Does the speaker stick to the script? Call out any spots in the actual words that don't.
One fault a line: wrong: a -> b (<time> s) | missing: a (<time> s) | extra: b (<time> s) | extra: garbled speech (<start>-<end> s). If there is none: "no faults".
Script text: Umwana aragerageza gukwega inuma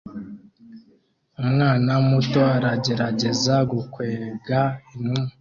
extra: muto (2.1 s)